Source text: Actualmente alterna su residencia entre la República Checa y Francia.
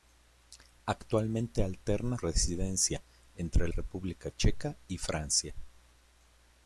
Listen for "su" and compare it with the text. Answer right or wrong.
wrong